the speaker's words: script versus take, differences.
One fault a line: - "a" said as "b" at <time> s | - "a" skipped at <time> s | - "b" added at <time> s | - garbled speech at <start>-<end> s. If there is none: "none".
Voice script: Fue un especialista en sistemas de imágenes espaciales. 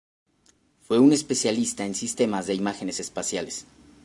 none